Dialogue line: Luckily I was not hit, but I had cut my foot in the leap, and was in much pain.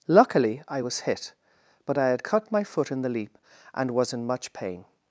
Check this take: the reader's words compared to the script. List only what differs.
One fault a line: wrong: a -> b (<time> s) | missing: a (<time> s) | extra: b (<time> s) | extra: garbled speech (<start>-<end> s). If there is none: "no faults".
missing: not (1.0 s)